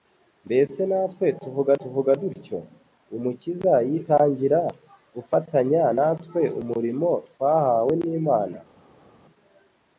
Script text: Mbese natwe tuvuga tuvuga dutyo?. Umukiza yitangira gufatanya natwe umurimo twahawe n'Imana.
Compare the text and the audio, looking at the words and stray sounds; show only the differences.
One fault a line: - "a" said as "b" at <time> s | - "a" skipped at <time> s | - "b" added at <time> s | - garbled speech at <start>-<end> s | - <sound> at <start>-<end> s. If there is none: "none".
none